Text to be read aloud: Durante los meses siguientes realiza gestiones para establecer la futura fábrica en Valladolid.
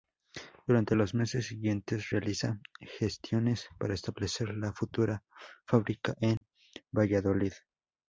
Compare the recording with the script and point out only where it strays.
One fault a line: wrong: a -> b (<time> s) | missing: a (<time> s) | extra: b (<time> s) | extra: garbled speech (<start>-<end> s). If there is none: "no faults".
no faults